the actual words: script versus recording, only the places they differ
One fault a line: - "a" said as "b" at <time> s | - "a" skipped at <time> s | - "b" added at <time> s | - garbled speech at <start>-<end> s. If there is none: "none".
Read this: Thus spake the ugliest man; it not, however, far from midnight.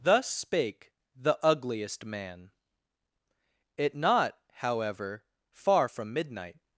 none